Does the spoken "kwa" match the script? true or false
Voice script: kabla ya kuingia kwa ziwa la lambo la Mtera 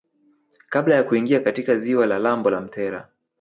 false